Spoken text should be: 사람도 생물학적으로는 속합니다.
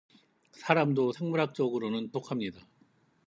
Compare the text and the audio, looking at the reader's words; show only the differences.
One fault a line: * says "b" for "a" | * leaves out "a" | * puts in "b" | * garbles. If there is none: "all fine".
all fine